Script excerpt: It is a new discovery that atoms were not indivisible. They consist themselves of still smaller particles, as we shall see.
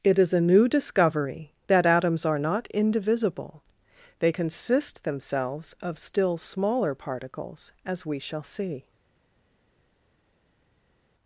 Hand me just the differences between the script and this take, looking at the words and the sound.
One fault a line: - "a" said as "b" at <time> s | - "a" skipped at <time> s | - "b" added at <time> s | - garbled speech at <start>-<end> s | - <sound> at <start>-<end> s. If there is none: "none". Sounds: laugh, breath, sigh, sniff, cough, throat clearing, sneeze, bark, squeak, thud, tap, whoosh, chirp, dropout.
- "were" said as "are" at 2.2 s